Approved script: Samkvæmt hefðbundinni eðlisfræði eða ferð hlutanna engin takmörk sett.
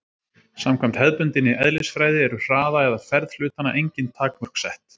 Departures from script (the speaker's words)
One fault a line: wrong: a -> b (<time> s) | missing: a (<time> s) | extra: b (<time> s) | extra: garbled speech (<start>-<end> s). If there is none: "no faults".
extra: eru hraða (2.3 s)